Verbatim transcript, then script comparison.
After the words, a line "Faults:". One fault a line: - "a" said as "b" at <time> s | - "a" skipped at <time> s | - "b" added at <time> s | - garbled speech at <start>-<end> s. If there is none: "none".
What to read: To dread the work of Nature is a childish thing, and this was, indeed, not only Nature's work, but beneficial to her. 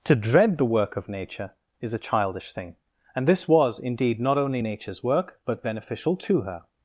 To dread the work of Nature is a childish thing, and this was, indeed, not only Nature's work, but beneficial to her.
Faults:
none